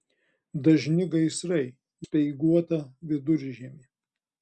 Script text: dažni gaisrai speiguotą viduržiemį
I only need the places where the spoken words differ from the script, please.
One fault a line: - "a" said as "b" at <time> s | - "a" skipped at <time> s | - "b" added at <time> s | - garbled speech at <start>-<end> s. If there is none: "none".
none